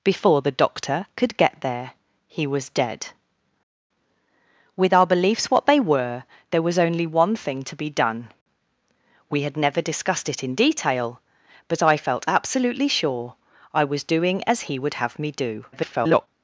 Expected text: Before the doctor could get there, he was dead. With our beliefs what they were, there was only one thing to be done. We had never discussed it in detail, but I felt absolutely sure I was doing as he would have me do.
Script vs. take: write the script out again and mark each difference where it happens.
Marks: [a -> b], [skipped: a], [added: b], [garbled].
Before the doctor could get there, he was dead. With our beliefs what they were, there was only one thing to be done. We had never discussed it in detail, but I felt absolutely sure I was doing as he would have me do. [garbled]